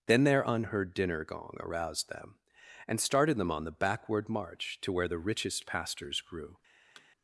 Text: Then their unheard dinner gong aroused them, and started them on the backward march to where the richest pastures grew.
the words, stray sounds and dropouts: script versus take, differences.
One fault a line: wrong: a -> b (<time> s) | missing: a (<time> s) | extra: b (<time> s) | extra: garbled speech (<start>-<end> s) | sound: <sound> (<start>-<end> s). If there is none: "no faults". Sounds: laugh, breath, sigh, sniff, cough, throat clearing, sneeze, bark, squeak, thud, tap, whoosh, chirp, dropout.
sound: thud (7.0-7.1 s)